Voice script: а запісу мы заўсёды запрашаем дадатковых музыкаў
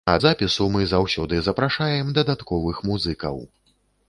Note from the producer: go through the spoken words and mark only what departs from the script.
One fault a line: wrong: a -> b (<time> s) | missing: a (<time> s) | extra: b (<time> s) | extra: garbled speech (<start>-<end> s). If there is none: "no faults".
no faults